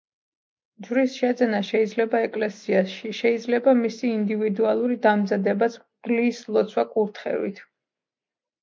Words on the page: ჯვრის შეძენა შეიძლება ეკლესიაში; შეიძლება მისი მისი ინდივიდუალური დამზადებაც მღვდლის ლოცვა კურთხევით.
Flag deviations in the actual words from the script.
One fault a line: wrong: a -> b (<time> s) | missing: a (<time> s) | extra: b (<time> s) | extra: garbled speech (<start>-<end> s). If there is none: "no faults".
missing: მისი (4.1 s)